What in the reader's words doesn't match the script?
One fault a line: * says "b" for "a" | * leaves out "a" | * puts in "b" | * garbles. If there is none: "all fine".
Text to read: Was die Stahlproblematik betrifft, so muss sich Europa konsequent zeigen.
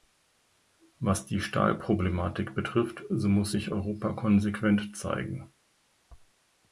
all fine